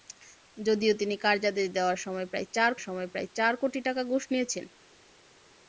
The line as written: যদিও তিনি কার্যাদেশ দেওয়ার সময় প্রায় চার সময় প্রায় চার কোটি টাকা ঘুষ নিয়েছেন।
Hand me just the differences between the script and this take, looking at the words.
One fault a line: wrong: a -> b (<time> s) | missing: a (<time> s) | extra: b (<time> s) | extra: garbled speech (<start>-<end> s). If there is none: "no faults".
no faults